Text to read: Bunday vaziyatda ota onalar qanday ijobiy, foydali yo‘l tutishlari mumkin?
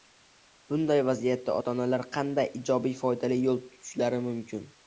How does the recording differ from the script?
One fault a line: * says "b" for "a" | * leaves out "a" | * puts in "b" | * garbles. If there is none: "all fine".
all fine